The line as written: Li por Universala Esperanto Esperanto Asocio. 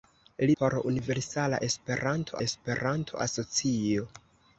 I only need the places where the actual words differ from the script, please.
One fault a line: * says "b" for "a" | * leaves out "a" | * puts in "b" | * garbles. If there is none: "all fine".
all fine